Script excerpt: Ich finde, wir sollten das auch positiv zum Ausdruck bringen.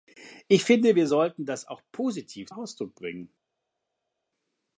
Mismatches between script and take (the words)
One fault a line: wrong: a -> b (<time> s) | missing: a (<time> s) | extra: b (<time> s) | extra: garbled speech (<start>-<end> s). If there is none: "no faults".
missing: zum (2.5 s)